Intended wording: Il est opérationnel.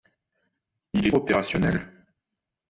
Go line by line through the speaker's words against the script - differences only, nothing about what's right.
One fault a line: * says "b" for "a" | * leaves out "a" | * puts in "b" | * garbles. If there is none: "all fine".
all fine